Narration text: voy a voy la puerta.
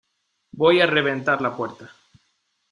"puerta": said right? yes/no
yes